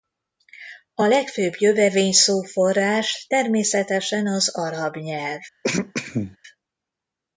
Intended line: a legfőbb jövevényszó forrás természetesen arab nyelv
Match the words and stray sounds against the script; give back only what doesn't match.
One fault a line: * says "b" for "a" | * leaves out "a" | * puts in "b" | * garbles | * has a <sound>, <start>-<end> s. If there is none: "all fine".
* puts in "az"
* has a throat clearing, 5.6-6.4 s